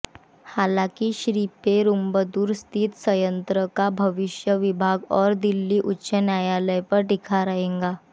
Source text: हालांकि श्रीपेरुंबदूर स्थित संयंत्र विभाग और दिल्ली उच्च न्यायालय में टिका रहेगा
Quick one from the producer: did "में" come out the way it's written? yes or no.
no